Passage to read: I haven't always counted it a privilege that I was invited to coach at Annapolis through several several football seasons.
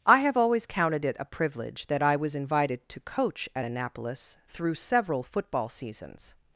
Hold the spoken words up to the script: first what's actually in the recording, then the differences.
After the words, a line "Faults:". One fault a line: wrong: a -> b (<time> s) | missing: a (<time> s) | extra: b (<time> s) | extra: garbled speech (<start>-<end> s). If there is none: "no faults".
I have always counted it a privilege that I was invited to coach at Annapolis through several football seasons.
Faults:
wrong: haven't -> have (0.2 s)
missing: several (5.2 s)